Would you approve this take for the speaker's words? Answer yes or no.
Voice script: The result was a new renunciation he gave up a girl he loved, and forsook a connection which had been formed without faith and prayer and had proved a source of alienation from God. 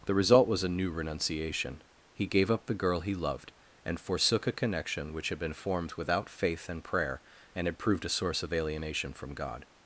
no